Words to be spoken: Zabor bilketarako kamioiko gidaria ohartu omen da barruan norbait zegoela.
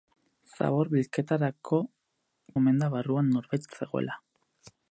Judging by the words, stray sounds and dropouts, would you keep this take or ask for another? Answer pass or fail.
fail